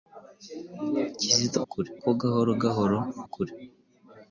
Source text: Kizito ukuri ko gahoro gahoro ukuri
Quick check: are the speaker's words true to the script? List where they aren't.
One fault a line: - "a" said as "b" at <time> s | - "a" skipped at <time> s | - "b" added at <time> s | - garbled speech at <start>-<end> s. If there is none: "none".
none